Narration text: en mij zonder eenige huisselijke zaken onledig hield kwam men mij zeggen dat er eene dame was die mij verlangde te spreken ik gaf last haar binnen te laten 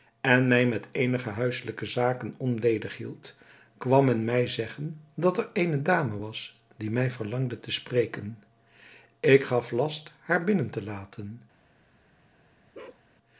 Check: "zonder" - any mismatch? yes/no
yes